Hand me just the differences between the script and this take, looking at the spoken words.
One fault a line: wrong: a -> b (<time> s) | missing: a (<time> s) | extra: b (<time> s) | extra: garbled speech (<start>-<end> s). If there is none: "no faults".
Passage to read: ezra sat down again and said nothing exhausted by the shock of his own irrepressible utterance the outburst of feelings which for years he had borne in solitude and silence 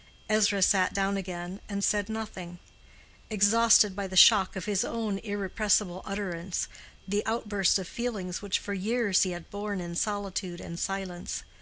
no faults